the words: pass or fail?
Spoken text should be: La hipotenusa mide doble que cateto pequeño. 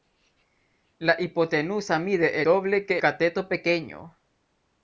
pass